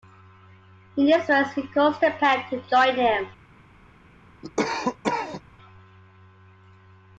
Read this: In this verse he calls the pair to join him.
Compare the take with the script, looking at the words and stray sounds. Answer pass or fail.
fail